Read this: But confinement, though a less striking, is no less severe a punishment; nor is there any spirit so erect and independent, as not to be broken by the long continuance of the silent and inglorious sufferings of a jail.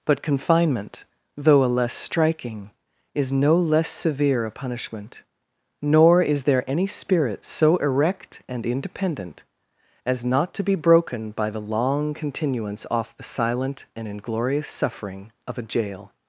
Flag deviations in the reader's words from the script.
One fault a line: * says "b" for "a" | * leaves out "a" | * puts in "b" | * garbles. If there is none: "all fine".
* says "off" for "of"
* says "suffering" for "sufferings"